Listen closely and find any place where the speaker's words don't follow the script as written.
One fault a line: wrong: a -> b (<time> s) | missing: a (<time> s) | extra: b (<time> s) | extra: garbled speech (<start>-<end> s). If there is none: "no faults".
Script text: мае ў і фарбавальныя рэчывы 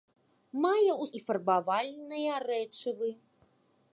no faults